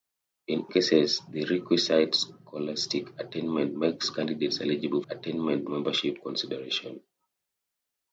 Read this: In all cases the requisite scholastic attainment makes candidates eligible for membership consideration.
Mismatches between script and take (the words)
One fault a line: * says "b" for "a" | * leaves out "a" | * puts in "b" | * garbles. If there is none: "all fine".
* leaves out "all"
* says "attainment" for "for"